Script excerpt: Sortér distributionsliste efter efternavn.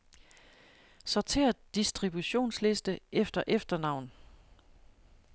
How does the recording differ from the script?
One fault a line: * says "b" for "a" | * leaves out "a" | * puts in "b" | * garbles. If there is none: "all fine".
all fine